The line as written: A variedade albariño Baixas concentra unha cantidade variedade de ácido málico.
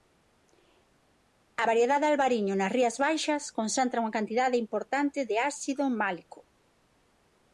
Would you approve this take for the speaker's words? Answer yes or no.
no